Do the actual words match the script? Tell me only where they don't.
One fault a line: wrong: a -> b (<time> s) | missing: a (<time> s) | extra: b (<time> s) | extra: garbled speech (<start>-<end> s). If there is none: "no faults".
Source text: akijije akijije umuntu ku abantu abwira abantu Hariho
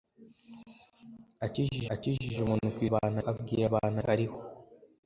no faults